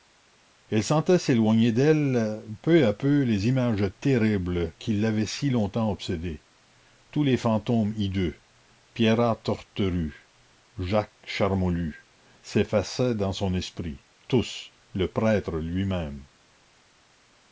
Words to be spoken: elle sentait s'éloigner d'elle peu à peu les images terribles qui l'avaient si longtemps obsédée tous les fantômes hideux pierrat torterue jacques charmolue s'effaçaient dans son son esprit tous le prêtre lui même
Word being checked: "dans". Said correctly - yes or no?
yes